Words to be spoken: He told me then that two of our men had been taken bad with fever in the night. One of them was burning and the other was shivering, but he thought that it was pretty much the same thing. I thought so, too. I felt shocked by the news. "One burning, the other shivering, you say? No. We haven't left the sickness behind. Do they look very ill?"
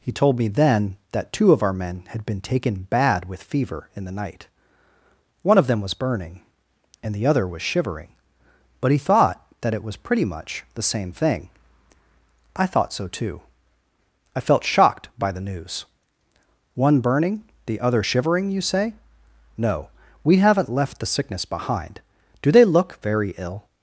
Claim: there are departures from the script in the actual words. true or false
false